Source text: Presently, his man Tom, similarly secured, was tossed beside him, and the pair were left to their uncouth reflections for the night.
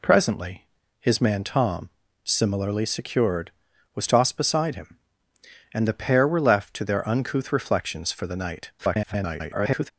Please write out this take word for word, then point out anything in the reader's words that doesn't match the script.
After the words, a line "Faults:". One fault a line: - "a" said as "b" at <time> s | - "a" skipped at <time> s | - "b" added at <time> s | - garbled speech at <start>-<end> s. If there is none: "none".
Presently, his man Tom, similarly secured, was tossed beside him, and the pair were left to their uncouth reflections for the night. [garbled]
Faults:
- garbled speech at 8.8-9.9 s